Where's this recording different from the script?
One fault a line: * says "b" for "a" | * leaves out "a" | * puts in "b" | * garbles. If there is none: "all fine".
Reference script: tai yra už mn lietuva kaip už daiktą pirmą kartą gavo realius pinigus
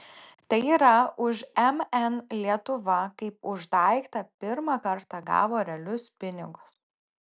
all fine